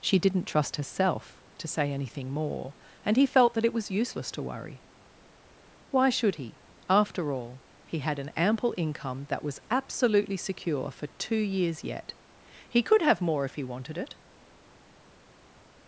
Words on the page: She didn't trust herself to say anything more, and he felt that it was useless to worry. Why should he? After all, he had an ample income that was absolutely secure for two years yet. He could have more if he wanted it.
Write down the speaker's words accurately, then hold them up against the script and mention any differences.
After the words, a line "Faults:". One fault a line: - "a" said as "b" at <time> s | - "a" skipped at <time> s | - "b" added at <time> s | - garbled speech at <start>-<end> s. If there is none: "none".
She didn't trust herself to say anything more, and he felt that it was useless to worry. Why should he? After all, he had an ample income that was absolutely secure for two years yet. He could have more if he wanted it.
Faults:
none